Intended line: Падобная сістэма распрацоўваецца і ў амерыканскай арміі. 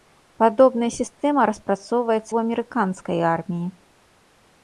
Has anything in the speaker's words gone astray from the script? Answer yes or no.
yes